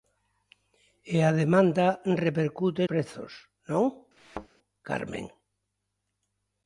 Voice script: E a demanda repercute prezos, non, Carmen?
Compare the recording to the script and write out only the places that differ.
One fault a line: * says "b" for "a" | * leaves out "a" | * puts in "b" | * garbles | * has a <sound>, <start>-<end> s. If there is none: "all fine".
* has a thud, 4.2-4.5 s